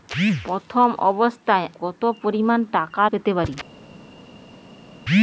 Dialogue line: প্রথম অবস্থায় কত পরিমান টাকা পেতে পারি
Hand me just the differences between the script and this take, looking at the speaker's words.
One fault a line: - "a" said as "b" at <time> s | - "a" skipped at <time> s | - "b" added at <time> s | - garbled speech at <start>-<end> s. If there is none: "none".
none